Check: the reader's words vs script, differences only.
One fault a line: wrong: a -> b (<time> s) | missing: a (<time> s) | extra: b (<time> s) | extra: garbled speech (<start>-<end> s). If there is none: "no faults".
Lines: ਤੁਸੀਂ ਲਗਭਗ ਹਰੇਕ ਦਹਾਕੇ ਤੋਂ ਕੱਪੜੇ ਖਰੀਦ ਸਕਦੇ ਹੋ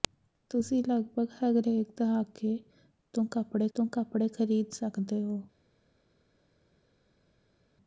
extra: ਤੋਂ ਕੱਪੜੇ (3.7 s)